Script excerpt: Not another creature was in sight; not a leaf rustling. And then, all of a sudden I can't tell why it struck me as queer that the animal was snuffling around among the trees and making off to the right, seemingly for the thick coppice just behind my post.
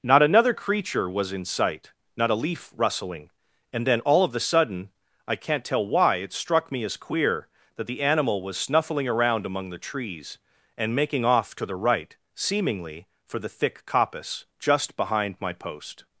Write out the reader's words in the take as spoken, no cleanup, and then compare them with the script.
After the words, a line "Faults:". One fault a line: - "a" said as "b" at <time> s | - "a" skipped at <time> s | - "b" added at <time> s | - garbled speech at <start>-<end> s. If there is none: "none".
Not another creature was in sight; not a leaf rustling. And then, all of a sudden I can't tell why it struck me as queer that the animal was snuffling around among the trees and making off to the right, seemingly for the thick coppice just behind my post.
Faults:
none